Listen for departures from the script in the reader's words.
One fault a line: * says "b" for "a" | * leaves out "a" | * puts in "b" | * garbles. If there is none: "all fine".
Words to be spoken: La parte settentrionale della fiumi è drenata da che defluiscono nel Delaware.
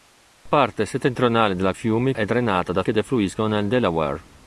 all fine